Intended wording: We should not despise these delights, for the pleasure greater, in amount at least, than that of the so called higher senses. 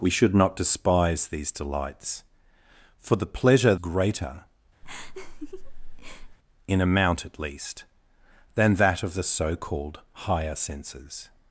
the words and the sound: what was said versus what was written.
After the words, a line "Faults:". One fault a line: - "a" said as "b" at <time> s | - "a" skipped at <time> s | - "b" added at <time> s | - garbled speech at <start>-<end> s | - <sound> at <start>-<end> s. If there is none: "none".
We should not despise these delights, for the pleasure greater, in amount at least, than that of the so called higher senses.
Faults:
- laugh at 4.8-6.4 s